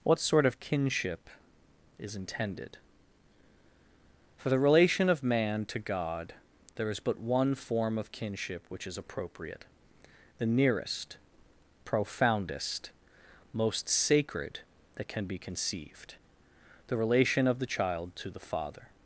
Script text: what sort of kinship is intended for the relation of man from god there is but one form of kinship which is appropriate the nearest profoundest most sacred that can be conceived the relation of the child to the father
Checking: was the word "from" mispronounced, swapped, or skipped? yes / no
yes